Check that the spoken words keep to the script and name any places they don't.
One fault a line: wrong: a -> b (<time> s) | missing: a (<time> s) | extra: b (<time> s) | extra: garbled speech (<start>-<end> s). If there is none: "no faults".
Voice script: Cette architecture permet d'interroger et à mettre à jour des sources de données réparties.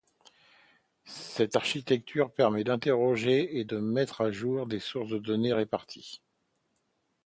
wrong: à -> de (3.6 s)